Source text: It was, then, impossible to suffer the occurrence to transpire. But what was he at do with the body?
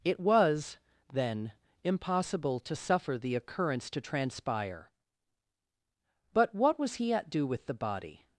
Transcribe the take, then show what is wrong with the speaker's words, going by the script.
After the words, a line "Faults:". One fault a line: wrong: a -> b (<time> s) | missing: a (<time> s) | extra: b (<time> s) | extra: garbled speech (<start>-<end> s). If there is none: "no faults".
It was, then, impossible to suffer the occurrence to transpire. But what was he at do with the body?
Faults:
no faults